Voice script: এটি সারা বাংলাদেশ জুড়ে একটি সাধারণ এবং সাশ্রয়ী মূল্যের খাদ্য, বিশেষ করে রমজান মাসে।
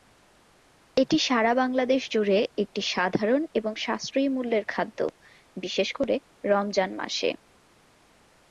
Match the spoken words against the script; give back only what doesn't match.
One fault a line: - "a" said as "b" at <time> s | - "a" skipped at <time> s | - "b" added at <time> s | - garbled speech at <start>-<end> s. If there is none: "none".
none